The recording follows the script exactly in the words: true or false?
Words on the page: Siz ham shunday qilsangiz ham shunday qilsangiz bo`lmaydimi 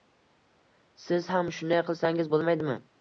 false